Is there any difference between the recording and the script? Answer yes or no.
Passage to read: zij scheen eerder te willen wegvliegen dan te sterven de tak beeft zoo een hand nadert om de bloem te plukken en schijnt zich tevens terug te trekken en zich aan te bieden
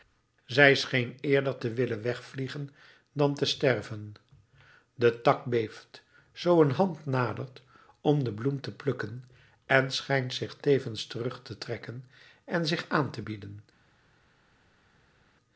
no